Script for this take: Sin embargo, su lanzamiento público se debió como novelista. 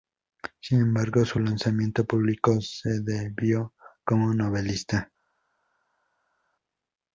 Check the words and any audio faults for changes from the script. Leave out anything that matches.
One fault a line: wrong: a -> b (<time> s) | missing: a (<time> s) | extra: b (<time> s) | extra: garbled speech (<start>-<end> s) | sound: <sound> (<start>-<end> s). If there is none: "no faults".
no faults